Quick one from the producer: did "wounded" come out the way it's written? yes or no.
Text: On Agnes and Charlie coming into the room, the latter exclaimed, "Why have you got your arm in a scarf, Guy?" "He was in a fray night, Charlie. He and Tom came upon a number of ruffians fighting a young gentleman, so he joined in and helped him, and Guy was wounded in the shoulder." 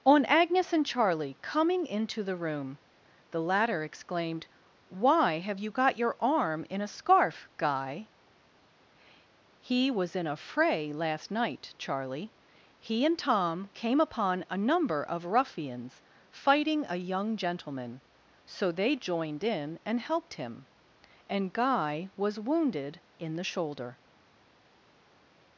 yes